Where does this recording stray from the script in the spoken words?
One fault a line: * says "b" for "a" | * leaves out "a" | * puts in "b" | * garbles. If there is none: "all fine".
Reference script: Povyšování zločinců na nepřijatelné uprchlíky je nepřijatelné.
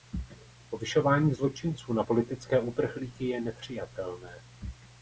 * says "politické" for "nepřijatelné"